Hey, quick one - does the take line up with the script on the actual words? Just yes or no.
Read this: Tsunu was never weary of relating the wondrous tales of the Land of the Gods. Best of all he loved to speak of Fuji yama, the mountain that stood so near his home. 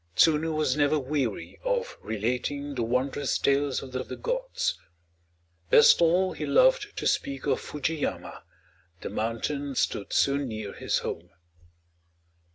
no